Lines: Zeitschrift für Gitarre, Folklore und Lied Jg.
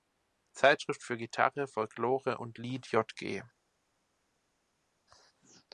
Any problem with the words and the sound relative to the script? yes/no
no